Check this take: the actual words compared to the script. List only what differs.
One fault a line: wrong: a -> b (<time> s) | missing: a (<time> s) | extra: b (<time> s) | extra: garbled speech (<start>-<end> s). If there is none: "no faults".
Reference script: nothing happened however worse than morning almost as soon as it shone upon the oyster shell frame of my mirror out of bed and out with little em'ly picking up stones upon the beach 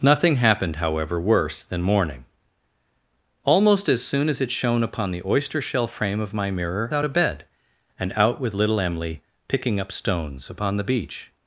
no faults